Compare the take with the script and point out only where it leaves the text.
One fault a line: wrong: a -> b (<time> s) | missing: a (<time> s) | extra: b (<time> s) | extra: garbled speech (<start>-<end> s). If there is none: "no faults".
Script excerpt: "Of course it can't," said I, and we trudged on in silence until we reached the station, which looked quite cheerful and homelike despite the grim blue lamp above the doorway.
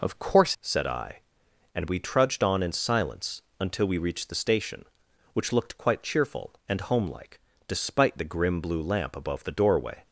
missing: it can't (0.6 s)